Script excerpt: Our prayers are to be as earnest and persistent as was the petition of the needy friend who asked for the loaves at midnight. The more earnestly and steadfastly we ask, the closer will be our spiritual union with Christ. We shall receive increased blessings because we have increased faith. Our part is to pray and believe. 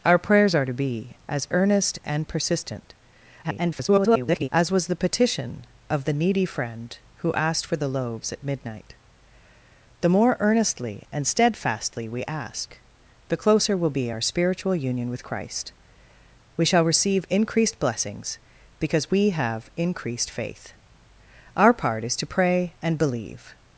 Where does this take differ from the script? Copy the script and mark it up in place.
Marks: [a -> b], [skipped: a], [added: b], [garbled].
Our prayers are to be as earnest and persistent [garbled] as was the petition of the needy friend who asked for the loaves at midnight. The more earnestly and steadfastly we ask, the closer will be our spiritual union with Christ. We shall receive increased blessings because we have increased faith. Our part is to pray and believe.